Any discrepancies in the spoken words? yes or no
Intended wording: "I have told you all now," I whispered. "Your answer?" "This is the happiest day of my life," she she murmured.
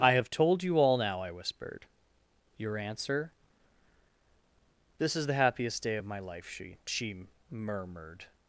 no